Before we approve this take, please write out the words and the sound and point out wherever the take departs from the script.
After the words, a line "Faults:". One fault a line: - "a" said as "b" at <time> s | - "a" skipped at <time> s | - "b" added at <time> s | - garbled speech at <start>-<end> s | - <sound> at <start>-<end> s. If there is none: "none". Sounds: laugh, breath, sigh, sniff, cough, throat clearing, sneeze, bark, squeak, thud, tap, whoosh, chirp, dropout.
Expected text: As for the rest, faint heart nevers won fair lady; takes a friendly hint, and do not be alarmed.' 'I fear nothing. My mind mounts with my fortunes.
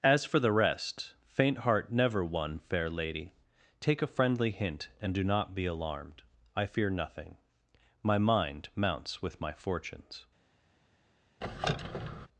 As for the rest, faint heart never won fair lady; take a friendly hint, and do not be alarmed.' 'I fear nothing. My mind mounts with my fortunes.
Faults:
- "nevers" said as "never" at 1.9 s
- "takes" said as "take" at 3.8 s
- squeak at 11.4-12.3 s